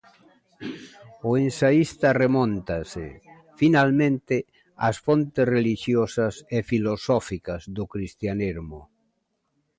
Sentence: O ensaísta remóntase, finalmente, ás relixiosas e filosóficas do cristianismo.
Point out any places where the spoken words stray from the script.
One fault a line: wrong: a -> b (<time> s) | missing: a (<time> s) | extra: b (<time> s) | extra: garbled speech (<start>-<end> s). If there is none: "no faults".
extra: fontes (5.0 s)